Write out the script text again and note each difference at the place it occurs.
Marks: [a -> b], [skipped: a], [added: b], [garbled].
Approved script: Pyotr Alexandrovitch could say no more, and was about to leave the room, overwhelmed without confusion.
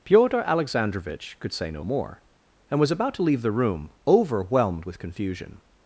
Pyotr Alexandrovitch could say no more, and was about to leave the room, overwhelmed [without -> with] confusion.